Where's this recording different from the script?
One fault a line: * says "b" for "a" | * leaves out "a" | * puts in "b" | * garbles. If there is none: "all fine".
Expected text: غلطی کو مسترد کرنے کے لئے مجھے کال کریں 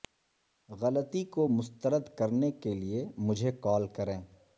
all fine